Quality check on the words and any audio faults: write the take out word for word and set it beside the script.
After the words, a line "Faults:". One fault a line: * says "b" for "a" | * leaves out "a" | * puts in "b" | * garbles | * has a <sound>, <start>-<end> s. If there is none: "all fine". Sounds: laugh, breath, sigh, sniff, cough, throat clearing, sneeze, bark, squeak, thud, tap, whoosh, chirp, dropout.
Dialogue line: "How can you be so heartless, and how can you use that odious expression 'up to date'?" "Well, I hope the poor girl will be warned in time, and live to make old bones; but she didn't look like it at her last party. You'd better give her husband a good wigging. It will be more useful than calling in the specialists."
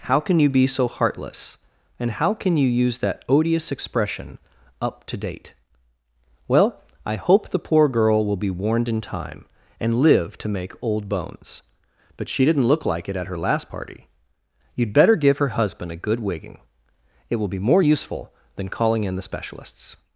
"How can you be so heartless, and how can you use that odious expression 'up to date'?" "Well, I hope the poor girl will be warned in time, and live to make old bones; but she didn't look like it at her last party. You'd better give her husband a good wigging. It will be more useful than calling in the specialists."
Faults:
all fine